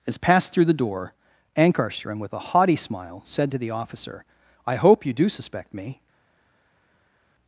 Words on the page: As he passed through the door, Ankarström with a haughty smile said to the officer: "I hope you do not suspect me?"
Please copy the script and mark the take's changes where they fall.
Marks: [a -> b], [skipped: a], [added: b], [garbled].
As [skipped: he] passed through the door, Ankarström with a haughty smile said to the officer: "I hope you do [skipped: not] suspect me?"